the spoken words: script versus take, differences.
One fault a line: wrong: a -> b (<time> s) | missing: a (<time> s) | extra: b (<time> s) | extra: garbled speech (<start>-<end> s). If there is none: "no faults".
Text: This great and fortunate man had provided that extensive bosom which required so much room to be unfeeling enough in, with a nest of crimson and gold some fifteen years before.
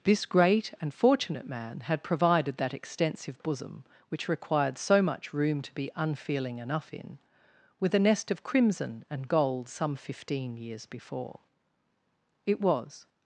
extra: It was (12.5 s)